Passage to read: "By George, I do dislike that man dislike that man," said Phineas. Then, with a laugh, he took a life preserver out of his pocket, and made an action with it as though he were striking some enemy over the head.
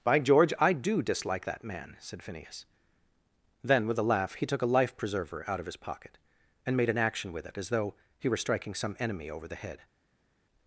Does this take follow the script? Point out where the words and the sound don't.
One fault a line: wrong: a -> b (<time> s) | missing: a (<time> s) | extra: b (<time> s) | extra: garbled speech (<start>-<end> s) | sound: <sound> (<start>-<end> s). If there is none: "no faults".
missing: dislike that man (2.0 s)